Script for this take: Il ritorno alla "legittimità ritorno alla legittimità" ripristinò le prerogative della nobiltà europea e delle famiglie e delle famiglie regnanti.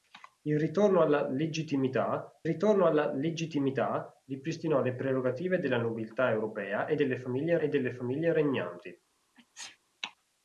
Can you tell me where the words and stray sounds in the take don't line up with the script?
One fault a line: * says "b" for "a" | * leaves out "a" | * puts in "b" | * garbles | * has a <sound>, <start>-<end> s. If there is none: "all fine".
* has a sneeze, 9.4-9.8 s